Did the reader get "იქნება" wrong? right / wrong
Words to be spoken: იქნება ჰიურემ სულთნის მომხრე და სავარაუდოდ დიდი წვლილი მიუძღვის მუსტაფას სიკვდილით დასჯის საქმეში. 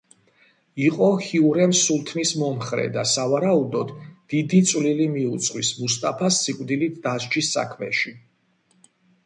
wrong